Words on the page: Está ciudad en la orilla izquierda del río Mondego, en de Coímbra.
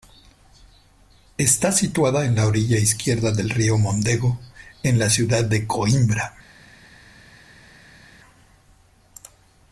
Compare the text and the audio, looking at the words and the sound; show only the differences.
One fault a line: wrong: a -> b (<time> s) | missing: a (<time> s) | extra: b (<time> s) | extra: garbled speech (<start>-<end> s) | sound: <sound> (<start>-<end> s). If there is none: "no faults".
wrong: ciudad -> situada (1.7 s)
extra: la ciudad (5.0 s)